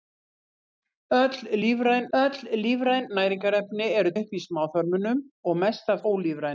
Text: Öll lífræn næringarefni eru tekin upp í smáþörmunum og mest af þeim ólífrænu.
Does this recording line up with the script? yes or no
no